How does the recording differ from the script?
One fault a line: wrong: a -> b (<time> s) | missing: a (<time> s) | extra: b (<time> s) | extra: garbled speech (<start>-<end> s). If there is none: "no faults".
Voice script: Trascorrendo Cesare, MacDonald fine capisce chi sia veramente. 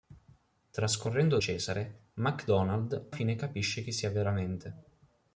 no faults